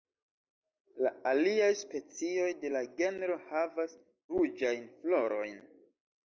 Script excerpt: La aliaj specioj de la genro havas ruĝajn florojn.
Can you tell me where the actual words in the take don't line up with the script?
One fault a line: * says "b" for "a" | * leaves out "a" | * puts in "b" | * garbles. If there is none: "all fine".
all fine